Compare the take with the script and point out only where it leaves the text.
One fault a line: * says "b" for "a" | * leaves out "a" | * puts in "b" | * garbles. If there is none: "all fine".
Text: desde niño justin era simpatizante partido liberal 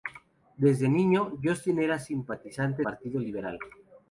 all fine